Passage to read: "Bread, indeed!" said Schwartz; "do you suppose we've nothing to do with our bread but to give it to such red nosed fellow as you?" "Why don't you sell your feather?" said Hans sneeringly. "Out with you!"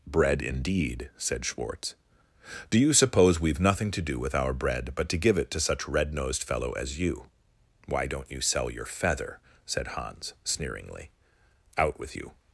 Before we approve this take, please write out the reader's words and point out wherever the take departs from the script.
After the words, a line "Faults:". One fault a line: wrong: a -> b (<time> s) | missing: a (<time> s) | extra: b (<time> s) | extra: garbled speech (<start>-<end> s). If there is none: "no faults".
"Bread, indeed!" said Schwartz; "do you suppose we've nothing to do with our bread but to give it to such red nosed fellow as you?" "Why don't you sell your feather?" said Hans sneeringly. "Out with you!"
Faults:
no faults